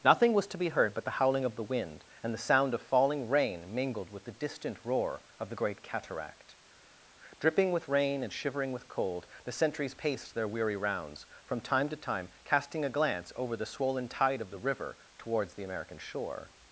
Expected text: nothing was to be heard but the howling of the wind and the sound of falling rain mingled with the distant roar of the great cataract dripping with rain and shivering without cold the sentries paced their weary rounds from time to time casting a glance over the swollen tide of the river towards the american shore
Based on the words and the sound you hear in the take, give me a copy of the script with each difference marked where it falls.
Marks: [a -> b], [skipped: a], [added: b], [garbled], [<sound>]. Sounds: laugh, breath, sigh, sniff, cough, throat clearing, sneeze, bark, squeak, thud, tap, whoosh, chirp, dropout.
nothing was to be heard but the howling of the wind and the sound of falling rain mingled with the distant roar of the great cataract dripping with rain and shivering [without -> with] cold the sentries paced their weary rounds from time to time casting a glance over the swollen tide of the river towards the american shore